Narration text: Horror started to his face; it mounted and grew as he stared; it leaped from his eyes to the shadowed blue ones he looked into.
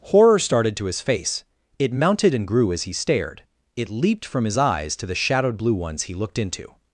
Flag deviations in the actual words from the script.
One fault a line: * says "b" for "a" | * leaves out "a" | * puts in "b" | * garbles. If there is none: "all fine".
all fine